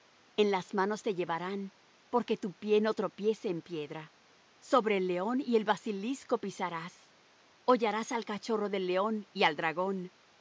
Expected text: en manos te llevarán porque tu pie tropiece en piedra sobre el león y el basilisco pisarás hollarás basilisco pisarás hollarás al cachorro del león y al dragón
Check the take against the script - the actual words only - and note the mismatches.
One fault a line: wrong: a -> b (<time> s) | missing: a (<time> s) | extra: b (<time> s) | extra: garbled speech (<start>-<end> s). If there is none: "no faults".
extra: las (0.5 s)
extra: no (2.8 s)
missing: basilisco pisarás hollarás (8.1 s)